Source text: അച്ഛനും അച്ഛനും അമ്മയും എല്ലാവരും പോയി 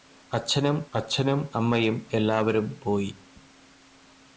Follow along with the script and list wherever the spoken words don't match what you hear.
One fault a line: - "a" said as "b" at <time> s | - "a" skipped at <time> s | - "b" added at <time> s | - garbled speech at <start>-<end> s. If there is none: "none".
none